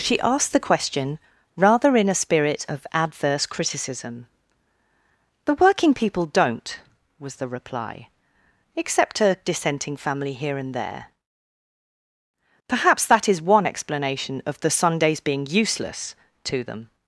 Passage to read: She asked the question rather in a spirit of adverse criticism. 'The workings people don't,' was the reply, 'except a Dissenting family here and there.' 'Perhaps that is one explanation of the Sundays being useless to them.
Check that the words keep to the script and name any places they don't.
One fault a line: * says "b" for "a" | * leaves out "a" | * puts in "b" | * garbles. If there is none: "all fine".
* says "working" for "workings"